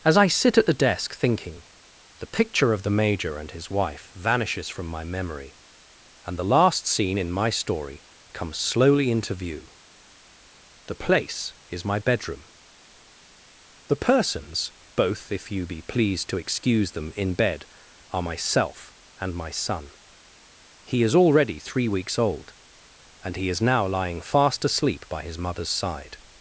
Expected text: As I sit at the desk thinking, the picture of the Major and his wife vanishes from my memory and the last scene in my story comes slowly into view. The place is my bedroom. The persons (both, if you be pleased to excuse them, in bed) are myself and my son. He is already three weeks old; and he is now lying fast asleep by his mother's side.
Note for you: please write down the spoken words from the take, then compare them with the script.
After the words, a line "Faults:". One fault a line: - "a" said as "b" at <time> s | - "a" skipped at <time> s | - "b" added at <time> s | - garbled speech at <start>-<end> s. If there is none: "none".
As I sit at the desk thinking, the picture of the Major and his wife vanishes from my memory and the last scene in my story comes slowly into view. The place is my bedroom. The persons (both, if you be pleased to excuse them, in bed) are myself and my son. He is already three weeks old; and he is now lying fast asleep by his mother's side.
Faults:
none